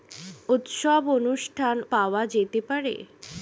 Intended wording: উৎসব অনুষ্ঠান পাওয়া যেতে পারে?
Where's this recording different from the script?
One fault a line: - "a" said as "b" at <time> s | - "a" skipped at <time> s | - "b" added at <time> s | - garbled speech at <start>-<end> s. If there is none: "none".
none